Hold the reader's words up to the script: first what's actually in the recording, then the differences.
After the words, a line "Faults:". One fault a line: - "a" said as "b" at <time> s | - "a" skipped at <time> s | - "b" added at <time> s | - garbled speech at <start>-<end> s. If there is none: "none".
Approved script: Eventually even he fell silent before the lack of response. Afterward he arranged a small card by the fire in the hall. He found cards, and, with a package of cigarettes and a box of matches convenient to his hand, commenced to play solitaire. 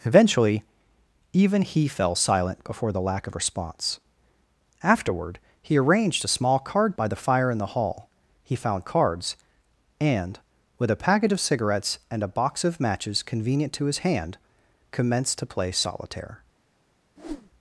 Eventually even he fell silent before the lack of response. Afterward he arranged a small card by the fire in the hall. He found cards, and, with a package of cigarettes and a box of matches convenient to his hand, commenced to play solitaire.
Faults:
none